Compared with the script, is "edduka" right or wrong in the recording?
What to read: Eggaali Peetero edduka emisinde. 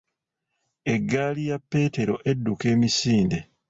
right